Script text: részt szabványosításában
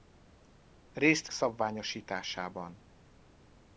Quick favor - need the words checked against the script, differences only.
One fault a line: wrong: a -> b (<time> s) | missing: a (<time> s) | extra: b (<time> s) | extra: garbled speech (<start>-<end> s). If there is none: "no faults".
no faults